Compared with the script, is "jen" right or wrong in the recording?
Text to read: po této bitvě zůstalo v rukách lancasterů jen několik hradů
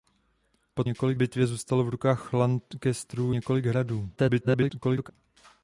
wrong